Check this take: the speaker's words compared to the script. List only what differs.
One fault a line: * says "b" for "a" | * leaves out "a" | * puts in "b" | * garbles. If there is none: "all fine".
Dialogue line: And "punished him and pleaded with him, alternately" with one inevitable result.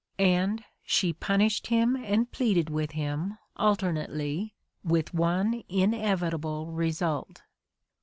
* puts in "she"